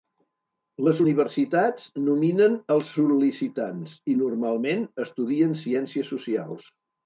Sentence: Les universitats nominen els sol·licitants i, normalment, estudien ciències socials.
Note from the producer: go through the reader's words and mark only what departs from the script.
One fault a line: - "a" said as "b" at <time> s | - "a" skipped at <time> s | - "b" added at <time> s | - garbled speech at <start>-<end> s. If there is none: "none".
none